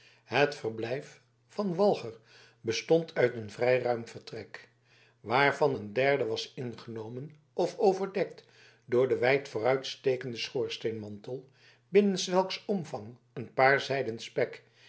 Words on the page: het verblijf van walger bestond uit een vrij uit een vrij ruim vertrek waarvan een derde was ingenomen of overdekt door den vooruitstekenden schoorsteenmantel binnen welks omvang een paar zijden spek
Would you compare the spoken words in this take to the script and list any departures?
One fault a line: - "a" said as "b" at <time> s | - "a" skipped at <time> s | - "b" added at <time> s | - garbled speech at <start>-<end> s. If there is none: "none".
- "uit een vrij" skipped at 3.8 s
- "wijd" added at 9.2 s